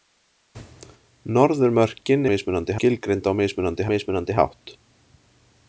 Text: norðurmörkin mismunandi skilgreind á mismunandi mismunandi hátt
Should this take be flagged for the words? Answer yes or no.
no